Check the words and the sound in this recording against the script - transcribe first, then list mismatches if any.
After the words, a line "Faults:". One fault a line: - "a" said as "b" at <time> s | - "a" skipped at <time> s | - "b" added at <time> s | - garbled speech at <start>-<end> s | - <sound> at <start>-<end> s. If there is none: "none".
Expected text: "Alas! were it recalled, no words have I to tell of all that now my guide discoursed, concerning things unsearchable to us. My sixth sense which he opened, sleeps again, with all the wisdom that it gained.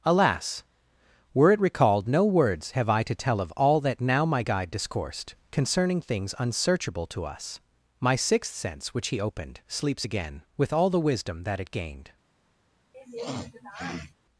"Alas! were it recalled, no words have I to tell of all that now my guide discoursed, concerning things unsearchable to us. My sixth sense which he opened, sleeps again, with all the wisdom that it gained.
Faults:
- sniff at 12.9-14.1 s